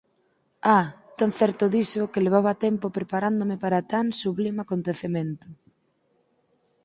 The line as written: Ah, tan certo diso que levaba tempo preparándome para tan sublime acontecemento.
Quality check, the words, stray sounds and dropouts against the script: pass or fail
pass